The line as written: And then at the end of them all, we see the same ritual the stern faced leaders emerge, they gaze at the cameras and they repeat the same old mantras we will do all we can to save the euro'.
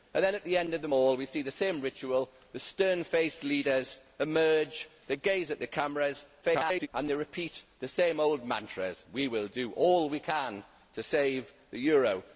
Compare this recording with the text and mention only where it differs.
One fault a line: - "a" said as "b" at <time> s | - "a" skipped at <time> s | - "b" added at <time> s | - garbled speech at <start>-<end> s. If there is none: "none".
- garbled speech at 6.4-6.9 s